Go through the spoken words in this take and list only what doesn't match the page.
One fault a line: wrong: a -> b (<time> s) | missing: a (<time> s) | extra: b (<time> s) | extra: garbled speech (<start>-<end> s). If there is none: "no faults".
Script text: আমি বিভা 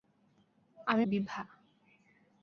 no faults